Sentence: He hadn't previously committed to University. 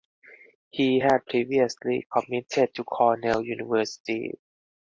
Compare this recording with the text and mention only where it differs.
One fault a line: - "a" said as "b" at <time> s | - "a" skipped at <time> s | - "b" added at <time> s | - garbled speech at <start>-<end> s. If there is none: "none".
- "hadn't" said as "had" at 1.0 s
- "Cornell" added at 2.8 s